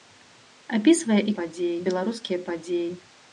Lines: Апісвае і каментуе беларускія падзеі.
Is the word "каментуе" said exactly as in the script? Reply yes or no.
no